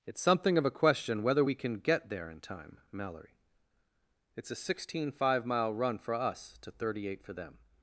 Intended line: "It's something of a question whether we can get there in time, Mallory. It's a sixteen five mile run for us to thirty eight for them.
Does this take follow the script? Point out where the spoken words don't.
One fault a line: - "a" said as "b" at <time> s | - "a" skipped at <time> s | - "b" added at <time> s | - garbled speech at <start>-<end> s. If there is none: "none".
none